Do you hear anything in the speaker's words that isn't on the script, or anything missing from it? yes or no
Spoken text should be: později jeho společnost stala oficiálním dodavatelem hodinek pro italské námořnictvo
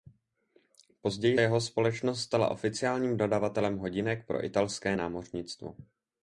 no